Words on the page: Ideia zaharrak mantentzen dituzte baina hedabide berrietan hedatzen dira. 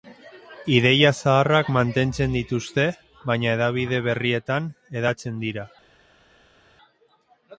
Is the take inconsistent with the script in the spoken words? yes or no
no